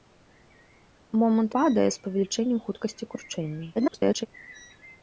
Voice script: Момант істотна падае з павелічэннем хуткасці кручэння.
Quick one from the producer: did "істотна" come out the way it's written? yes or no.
no